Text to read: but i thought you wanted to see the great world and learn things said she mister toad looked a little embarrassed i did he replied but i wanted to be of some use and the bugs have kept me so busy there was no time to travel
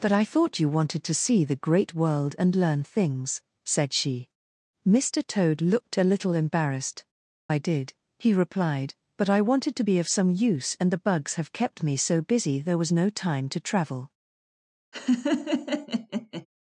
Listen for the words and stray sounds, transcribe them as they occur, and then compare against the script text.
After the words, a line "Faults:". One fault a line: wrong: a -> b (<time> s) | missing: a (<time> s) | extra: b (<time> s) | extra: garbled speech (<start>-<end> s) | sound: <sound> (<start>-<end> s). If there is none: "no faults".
but i thought you wanted to see the great world and learn things said she mister toad looked a little embarrassed i did he replied but i wanted to be of some use and the bugs have kept me so busy there was no time to travel
Faults:
sound: laugh (14.9-16.5 s)